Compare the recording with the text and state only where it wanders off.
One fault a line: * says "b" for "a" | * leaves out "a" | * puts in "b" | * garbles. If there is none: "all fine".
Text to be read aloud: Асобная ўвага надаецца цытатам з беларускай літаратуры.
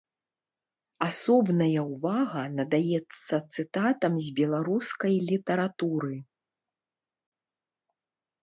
all fine